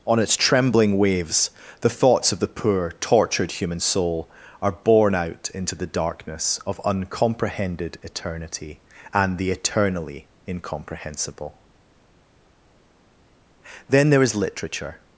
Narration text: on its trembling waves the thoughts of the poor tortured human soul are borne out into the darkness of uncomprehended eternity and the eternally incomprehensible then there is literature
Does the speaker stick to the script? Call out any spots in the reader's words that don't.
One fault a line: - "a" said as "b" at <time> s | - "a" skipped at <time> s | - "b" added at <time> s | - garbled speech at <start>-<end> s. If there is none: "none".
none